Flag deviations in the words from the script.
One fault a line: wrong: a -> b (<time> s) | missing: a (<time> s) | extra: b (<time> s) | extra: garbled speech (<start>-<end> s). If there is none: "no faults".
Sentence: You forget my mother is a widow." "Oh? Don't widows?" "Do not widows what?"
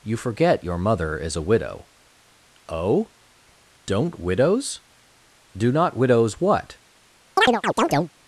wrong: my -> your (0.6 s)